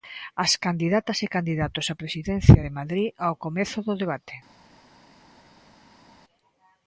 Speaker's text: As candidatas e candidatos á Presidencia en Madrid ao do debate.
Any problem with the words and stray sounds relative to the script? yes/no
yes